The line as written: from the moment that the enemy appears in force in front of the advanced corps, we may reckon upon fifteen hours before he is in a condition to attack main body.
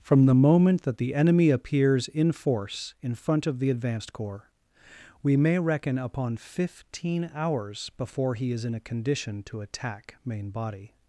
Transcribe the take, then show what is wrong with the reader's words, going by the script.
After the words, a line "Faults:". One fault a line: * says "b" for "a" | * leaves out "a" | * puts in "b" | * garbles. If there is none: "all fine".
from the moment that the enemy appears in force in front of the advanced corps, we may reckon upon fifteen hours before he is in a condition to attack main body.
Faults:
all fine